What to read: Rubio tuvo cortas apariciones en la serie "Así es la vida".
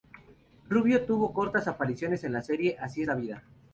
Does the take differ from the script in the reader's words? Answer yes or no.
no